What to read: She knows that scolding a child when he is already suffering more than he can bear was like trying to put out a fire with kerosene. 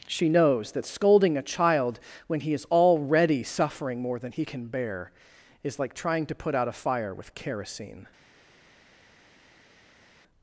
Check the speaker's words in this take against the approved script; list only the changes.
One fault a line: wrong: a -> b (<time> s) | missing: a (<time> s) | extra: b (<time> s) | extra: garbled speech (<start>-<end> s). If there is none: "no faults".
wrong: was -> is (5.6 s)